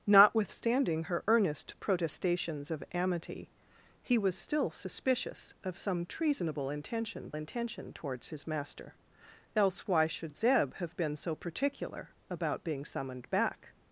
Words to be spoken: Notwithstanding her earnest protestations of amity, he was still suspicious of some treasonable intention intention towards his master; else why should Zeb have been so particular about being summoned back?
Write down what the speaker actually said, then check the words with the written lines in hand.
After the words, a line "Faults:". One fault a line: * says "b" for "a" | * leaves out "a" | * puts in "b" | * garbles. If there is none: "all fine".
Notwithstanding her earnest protestations of amity, he was still suspicious of some treasonable intention intention towards his master; else why should Zeb have been so particular about being summoned back?
Faults:
all fine